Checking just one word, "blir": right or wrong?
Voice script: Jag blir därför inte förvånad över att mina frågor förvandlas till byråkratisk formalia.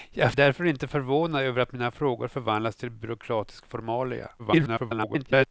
wrong